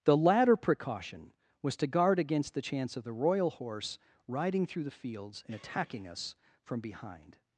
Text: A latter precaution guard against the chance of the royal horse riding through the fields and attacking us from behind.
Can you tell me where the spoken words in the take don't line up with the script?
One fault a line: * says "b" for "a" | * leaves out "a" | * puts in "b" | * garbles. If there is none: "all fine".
* says "The" for "A"
* puts in "was to"